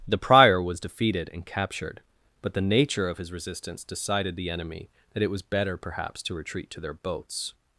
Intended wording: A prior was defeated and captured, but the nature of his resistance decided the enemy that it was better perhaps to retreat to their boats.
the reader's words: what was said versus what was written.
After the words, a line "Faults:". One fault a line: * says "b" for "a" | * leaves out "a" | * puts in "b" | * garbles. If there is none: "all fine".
The prior was defeated and captured, but the nature of his resistance decided the enemy that it was better perhaps to retreat to their boats.
Faults:
* says "The" for "A"